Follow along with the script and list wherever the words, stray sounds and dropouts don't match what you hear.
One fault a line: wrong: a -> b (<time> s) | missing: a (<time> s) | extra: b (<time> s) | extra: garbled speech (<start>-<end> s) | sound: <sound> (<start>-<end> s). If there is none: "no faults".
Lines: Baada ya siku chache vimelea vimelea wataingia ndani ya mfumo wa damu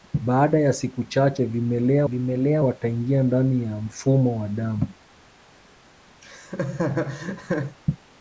sound: laugh (6.2-7.8 s)